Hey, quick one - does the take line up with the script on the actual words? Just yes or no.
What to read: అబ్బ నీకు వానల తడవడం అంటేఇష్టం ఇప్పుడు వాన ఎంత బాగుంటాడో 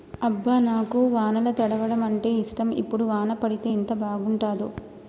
no